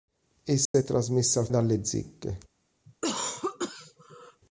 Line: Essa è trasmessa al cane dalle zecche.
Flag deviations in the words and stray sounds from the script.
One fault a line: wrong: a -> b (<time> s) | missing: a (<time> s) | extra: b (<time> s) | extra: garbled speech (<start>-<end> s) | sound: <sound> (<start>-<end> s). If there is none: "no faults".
sound: dropout (0.7-0.7 s)
missing: cane (1.5 s)
sound: cough (2.9-4.4 s)